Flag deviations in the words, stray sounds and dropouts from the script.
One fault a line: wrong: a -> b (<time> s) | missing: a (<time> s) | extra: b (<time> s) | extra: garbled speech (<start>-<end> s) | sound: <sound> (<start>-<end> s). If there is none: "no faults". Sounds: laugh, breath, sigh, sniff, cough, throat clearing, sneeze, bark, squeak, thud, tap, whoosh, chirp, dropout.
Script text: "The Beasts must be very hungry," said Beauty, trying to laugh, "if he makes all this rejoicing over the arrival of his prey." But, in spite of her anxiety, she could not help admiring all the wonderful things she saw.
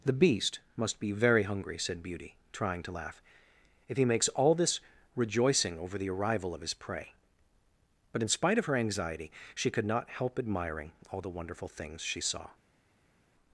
wrong: Beasts -> Beast (0.1 s)